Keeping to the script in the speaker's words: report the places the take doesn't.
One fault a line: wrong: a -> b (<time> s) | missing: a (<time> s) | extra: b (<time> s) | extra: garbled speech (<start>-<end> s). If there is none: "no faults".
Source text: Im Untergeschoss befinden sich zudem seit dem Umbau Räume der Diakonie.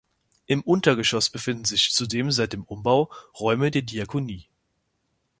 no faults